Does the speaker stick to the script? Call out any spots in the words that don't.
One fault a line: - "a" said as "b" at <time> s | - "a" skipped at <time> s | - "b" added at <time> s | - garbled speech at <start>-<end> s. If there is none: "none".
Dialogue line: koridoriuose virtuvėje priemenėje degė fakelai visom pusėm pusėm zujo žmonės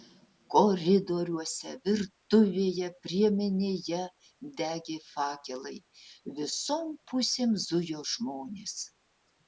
- "pusėm" skipped at 7.6 s